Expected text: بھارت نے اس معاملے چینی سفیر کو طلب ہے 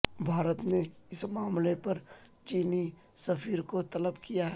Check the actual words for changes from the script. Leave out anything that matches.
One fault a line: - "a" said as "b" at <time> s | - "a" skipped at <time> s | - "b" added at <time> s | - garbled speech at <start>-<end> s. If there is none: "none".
- "پر" added at 1.8 s
- "کیا" added at 4.2 s